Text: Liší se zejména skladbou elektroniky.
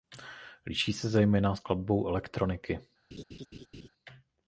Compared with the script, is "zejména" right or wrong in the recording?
right